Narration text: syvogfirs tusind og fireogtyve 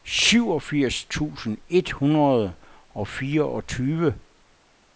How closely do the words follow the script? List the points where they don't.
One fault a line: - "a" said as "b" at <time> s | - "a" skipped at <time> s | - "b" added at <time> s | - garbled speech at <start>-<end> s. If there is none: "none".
- "et hundrede" added at 1.7 s